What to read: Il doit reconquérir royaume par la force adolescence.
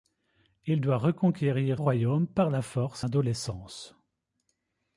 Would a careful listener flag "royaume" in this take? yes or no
no